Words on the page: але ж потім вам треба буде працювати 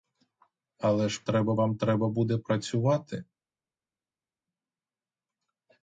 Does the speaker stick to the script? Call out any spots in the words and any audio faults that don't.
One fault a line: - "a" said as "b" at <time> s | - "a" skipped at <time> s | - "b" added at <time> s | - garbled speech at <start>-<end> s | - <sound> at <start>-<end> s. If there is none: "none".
- "потім" said as "треба" at 1.2 s